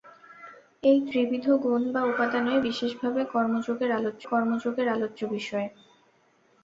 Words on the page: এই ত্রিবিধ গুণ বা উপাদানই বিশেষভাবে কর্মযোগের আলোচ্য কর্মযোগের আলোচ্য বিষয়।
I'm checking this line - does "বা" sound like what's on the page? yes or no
yes